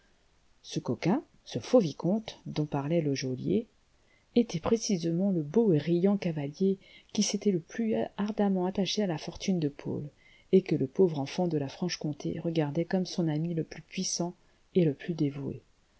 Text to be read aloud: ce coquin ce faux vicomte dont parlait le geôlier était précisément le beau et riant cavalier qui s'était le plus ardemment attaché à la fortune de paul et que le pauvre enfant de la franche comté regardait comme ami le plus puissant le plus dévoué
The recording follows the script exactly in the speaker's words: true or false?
false